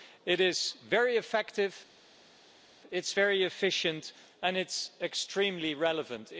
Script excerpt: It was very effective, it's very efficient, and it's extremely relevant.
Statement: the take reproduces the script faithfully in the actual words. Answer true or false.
false